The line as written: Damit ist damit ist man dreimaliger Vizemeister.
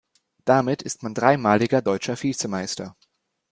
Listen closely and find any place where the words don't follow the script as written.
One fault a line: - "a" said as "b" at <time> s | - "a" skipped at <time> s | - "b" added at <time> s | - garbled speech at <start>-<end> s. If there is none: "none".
- "damit ist" skipped at 1.0 s
- "deutscher" added at 1.8 s